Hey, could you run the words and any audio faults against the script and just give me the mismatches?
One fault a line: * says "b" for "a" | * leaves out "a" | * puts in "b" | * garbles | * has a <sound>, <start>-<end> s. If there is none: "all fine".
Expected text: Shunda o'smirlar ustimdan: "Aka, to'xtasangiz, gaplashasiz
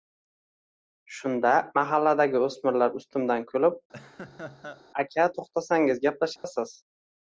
* puts in "mahalladagi"
* puts in "kulib"
* has a laugh, 3.9-4.8 s
* has a dropout, 6.4-6.4 s